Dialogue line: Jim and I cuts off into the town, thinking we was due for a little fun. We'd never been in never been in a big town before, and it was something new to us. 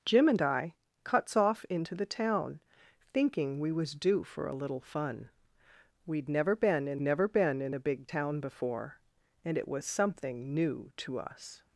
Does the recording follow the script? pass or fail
pass